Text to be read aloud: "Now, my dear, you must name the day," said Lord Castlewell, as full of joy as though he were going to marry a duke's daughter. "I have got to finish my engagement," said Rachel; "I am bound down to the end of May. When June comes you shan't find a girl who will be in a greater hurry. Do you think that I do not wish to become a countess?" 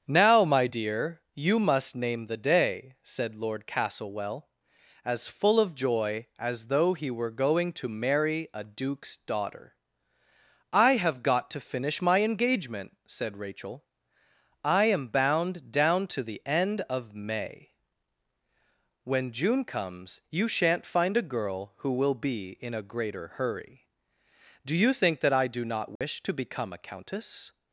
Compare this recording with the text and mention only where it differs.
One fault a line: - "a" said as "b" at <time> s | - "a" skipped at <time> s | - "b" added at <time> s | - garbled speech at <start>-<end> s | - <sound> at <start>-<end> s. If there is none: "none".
- dropout at 26.0-26.0 s